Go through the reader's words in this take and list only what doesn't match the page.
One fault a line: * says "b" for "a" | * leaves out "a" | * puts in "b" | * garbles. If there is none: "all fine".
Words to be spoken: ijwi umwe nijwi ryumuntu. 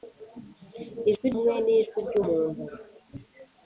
all fine